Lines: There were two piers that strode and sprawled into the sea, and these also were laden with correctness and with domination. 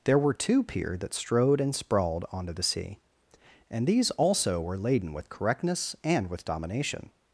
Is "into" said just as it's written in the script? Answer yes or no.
no